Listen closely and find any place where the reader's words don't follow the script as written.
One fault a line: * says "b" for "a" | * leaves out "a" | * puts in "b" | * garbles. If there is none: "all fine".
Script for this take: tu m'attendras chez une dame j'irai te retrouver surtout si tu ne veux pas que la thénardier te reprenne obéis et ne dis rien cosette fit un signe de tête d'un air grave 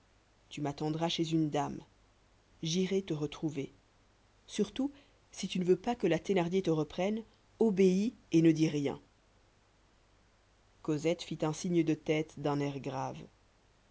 all fine